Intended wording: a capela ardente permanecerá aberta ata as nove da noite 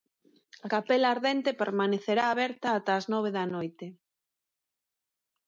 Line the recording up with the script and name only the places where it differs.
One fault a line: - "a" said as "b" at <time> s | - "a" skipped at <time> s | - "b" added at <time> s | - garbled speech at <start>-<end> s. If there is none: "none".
none